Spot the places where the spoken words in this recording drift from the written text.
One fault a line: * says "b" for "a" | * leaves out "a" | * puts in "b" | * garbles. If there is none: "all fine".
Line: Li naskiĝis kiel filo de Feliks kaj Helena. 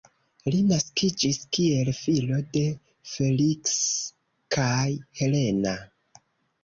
all fine